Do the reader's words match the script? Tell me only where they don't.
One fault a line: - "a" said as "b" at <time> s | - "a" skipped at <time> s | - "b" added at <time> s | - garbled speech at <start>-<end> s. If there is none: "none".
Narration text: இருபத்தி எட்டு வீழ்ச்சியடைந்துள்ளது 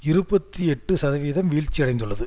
- "சதவீதம்" added at 0.9 s